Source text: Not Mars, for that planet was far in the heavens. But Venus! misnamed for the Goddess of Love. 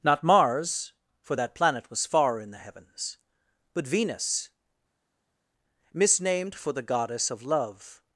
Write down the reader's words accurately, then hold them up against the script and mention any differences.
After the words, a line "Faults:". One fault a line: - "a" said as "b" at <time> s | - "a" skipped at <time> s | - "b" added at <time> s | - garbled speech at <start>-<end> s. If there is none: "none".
Not Mars, for that planet was far in the heavens. But Venus! misnamed for the Goddess of Love.
Faults:
none